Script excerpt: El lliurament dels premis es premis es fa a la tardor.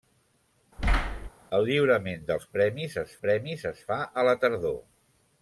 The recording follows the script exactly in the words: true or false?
true